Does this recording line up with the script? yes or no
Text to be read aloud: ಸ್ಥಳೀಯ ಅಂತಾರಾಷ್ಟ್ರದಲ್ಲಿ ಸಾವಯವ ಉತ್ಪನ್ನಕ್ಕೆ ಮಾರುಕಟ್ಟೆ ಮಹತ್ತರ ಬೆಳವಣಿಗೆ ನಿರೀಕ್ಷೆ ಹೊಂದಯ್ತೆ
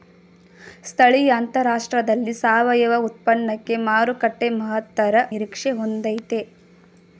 no